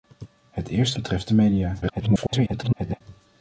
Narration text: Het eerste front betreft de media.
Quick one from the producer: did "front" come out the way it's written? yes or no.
no